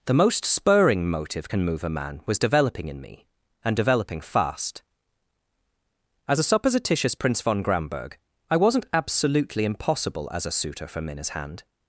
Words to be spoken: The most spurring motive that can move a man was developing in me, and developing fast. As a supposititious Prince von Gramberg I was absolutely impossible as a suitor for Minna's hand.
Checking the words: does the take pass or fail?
fail